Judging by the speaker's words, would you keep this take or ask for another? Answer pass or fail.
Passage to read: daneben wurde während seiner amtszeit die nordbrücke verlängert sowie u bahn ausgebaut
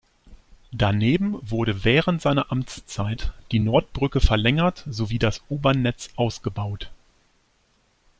fail